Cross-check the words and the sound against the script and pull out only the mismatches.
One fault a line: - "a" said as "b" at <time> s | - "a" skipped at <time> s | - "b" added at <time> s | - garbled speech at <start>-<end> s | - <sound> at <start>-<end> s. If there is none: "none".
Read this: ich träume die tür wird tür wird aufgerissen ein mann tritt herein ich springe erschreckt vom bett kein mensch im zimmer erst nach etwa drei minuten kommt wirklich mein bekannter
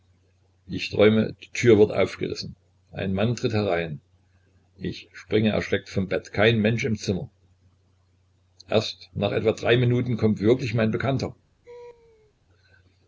- "tür wird" skipped at 1.9 s
- laugh at 11.6-12.3 s